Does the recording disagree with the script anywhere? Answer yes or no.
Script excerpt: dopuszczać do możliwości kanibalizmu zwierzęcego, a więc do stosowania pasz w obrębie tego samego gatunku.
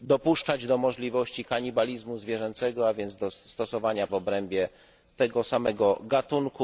yes